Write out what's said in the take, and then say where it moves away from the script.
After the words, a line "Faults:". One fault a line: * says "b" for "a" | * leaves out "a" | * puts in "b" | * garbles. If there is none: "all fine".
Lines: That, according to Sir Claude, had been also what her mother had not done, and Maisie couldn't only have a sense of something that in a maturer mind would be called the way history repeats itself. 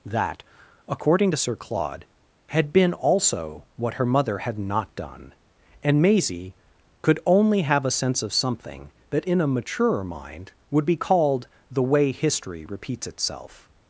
That, according to Sir Claude, had been also what her mother had not done, and Maisie could only have a sense of something that in a maturer mind would be called the way history repeats itself.
Faults:
* says "could" for "couldn't"